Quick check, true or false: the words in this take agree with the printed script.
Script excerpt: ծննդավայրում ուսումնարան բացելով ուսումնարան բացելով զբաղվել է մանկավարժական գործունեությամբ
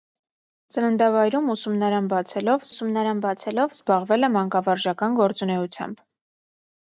true